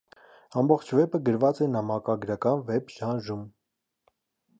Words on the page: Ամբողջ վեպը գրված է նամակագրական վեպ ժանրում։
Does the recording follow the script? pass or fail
pass